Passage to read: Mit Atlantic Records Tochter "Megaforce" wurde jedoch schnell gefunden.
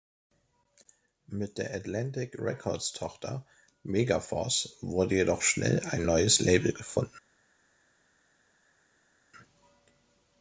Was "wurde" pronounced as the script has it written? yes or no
yes